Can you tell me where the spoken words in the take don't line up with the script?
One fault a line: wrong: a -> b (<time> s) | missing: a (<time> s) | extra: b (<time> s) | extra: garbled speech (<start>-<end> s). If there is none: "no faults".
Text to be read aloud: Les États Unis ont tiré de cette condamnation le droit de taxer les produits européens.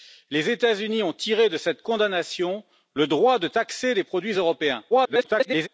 extra: garbled speech (4.9-5.7 s)